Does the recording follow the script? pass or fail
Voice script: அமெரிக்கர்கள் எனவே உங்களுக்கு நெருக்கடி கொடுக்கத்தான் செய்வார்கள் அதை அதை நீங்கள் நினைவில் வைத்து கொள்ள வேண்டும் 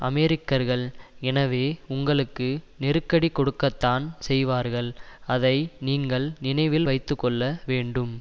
fail